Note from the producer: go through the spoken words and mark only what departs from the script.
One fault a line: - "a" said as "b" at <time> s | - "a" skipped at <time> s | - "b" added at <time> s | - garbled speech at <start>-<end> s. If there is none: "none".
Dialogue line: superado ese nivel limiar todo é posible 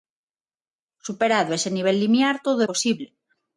none